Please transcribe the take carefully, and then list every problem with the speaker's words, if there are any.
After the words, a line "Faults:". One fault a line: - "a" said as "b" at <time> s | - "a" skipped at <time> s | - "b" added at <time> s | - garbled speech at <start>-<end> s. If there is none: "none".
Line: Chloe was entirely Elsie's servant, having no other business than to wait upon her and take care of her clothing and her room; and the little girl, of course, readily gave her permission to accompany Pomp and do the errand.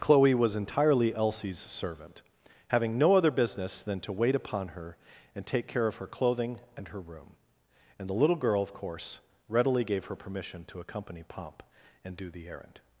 Chloe was entirely Elsie's servant, having no other business than to wait upon her and take care of her clothing and her room; and the little girl, of course, readily gave her permission to accompany Pomp and do the errand.
Faults:
none